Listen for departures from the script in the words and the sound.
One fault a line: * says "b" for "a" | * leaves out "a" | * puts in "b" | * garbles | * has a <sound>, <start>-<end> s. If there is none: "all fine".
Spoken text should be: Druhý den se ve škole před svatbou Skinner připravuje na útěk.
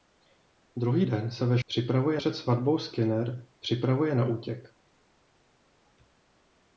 * says "připravuje" for "škole"